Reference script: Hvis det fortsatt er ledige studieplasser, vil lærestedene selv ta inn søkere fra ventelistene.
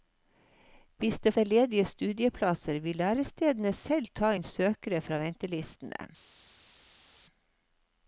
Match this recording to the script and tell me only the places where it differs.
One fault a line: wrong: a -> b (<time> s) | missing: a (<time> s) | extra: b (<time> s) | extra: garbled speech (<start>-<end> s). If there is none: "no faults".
missing: fortsatt (1.3 s)